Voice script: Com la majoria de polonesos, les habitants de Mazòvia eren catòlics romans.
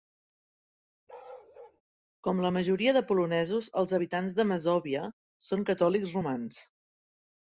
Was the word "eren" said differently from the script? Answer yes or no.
yes